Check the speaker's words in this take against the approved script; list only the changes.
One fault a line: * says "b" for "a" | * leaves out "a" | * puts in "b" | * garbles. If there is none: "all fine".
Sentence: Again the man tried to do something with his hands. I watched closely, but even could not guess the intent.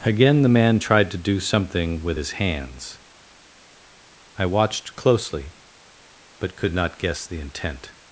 * leaves out "even"